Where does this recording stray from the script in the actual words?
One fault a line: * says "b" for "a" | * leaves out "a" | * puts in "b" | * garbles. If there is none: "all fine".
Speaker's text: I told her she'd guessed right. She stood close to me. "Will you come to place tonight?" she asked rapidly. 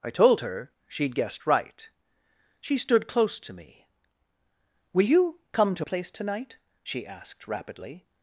all fine